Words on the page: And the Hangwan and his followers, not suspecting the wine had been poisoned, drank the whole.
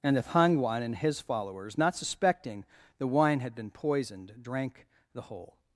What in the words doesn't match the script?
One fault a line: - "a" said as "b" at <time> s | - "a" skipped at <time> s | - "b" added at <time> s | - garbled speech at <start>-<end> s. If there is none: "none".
none